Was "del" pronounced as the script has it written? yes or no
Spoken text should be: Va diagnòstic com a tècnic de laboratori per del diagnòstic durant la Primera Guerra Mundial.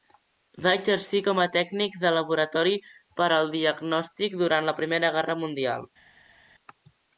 no